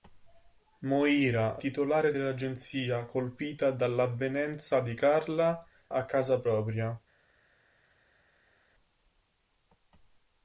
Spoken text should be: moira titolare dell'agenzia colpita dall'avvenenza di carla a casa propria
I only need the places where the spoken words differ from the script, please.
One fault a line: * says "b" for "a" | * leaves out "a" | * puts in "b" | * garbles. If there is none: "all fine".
all fine